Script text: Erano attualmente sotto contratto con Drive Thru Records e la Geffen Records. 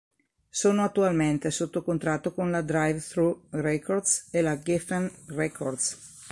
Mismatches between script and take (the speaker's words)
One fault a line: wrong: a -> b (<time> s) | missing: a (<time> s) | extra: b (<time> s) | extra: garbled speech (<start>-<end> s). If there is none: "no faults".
wrong: Erano -> Sono (0.5 s)
extra: la (2.5 s)